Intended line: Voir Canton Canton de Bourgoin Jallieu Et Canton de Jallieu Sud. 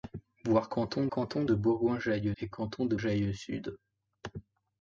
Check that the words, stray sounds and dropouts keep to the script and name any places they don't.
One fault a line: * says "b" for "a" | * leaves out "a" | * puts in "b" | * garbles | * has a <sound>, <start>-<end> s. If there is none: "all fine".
all fine